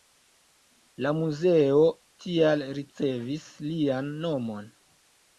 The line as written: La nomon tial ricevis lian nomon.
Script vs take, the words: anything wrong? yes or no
yes